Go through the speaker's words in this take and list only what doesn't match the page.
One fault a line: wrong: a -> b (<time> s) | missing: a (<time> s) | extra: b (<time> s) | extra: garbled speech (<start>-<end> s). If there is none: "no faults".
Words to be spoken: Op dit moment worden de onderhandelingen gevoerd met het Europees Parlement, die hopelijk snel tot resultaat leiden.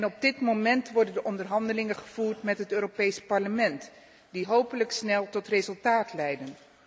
no faults